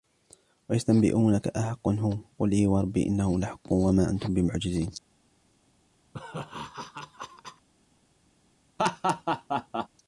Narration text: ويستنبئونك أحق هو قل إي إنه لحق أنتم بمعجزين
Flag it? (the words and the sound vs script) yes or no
yes